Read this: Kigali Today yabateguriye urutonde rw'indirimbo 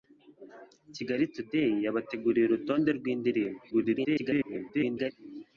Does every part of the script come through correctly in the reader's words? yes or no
no